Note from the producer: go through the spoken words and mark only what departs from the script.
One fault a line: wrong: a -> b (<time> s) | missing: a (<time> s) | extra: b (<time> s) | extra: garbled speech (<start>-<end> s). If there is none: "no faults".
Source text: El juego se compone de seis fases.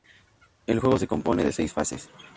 no faults